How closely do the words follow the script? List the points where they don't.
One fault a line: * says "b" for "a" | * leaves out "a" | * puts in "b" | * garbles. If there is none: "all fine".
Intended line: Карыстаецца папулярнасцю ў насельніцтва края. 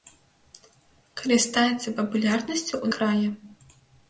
* leaves out "насельніцтва"